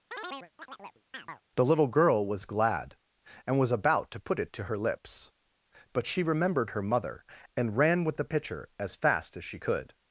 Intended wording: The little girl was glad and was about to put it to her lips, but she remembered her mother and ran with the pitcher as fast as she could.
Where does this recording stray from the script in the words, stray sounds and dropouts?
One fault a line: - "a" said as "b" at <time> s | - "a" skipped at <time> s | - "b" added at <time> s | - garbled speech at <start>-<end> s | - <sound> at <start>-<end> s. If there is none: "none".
- chirp at 0.1-1.4 s